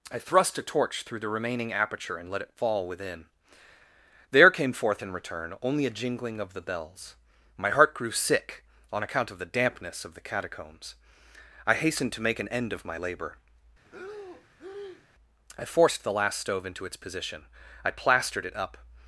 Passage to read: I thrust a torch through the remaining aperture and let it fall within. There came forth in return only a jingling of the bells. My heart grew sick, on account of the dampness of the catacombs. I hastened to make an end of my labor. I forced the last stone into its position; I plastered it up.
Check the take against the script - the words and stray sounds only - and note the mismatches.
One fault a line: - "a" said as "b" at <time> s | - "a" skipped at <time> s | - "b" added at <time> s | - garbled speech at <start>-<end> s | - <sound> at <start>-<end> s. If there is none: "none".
- breath at 13.8-15.1 s
- "stone" said as "stove" at 16.4 s